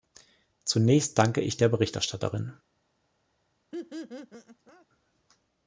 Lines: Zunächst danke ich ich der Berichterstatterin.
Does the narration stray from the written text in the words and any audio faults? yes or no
yes